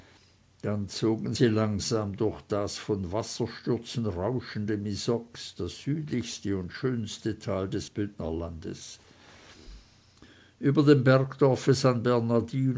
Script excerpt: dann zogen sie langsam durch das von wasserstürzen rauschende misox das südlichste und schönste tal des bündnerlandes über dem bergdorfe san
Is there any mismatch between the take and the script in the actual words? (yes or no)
no